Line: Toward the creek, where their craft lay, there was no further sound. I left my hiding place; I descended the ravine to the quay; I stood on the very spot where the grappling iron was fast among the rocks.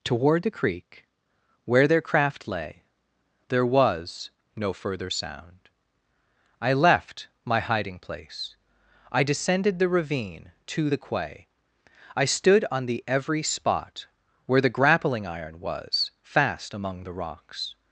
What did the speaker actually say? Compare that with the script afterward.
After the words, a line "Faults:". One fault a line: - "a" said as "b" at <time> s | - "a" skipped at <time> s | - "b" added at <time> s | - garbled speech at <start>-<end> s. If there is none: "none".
Toward the creek, where their craft lay, there was no further sound. I left my hiding place; I descended the ravine to the quay; I stood on the every spot where the grappling iron was fast among the rocks.
Faults:
- "very" said as "every" at 13.1 s